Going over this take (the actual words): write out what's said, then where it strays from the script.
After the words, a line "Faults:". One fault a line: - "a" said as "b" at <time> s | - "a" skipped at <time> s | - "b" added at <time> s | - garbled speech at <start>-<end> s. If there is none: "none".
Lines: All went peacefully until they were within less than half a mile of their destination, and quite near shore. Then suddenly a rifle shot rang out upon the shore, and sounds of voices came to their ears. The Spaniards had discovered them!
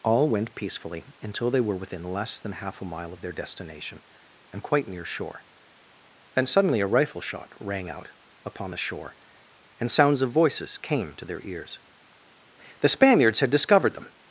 All went peacefully until they were within less than half a mile of their destination, and quite near shore. Then suddenly a rifle shot rang out upon the shore, and sounds of voices came to their ears. The Spaniards had discovered them!
Faults:
none